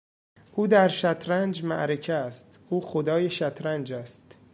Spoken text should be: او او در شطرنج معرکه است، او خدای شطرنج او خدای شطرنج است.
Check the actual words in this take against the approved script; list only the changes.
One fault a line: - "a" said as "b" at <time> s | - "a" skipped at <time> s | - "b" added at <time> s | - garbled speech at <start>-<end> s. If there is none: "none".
- "او" skipped at 0.7 s
- "او خدای شطرنج" skipped at 3.9 s